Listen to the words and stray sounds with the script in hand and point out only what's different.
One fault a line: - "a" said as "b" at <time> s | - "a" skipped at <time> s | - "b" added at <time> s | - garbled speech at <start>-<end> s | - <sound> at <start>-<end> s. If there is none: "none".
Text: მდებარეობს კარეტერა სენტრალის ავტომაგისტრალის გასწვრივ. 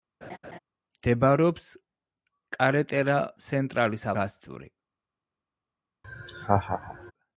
- laugh at 0.2-0.6 s
- "ავტომაგისტრალის" skipped at 4.1 s
- laugh at 6.0-7.1 s